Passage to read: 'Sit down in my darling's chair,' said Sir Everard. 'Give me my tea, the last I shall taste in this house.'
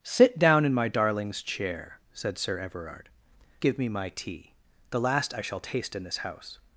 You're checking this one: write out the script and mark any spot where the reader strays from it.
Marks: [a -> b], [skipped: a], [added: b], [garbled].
'Sit down in my darling's chair,' said Sir Everard. 'Give me my tea, the last I shall taste in this house.'